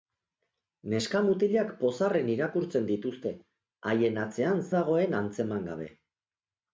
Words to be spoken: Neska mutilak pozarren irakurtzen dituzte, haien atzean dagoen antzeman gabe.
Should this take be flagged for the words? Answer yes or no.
no